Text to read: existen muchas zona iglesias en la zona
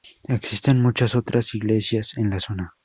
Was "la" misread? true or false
false